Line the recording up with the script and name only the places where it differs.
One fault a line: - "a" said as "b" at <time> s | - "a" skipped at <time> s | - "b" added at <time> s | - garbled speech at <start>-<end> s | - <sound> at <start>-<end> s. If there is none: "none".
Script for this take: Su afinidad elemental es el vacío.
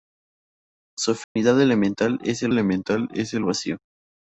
- dropout at 1.2-1.4 s
- "elemental es el" added at 2.5 s